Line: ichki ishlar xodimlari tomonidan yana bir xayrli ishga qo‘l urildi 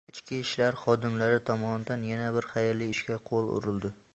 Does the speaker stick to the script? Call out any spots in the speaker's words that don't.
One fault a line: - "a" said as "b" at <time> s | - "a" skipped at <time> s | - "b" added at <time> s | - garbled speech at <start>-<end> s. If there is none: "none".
none